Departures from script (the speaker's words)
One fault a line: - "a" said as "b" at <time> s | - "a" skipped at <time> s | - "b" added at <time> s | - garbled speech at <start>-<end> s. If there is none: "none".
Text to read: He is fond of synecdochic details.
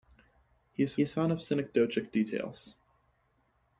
- "is" added at 1.0 s